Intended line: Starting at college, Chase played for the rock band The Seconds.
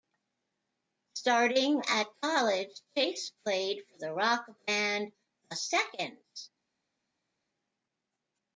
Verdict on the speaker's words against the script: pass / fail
pass